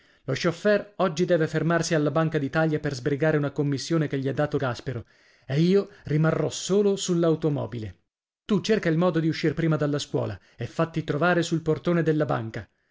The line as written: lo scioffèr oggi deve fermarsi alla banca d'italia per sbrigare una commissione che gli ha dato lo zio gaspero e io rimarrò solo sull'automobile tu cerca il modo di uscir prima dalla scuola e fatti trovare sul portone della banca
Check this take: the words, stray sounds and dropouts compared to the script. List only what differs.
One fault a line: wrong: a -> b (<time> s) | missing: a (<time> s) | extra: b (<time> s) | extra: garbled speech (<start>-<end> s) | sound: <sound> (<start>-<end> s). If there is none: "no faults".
missing: lo zio (4.6 s)